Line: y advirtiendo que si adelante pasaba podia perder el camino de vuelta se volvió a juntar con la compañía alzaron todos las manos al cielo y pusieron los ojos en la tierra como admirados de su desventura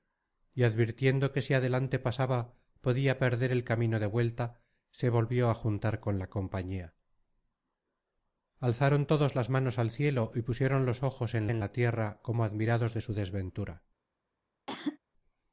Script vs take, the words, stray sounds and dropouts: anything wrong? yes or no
yes